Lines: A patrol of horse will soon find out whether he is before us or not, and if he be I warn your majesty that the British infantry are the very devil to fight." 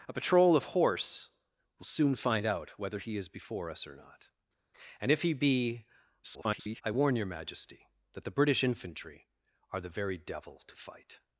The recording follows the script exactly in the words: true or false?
false